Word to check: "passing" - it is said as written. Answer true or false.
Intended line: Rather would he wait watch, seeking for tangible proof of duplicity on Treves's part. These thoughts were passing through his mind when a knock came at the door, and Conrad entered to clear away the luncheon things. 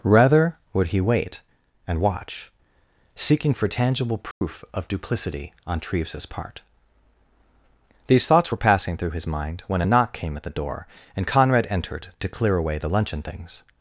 true